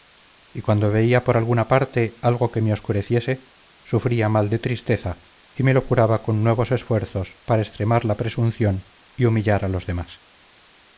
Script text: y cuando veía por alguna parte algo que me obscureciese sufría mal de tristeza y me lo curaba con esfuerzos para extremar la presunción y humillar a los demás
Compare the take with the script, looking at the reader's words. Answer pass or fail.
fail